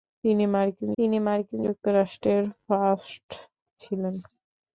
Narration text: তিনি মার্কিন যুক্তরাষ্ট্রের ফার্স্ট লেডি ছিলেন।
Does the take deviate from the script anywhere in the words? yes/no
yes